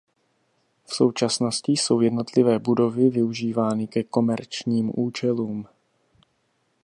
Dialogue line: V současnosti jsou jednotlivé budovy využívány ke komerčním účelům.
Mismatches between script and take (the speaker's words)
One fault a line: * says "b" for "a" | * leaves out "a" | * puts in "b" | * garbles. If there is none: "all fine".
all fine